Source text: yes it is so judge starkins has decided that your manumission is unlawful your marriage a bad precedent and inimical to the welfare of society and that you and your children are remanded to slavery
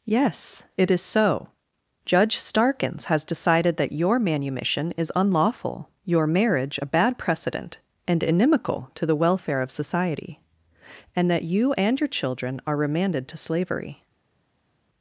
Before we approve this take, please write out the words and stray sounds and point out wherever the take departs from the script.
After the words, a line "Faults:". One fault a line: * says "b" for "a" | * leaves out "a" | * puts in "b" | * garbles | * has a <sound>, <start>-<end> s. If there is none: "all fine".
yes it is so judge starkins has decided that your manumission is unlawful your marriage a bad precedent and inimical to the welfare of society and that you and your children are remanded to slavery
Faults:
all fine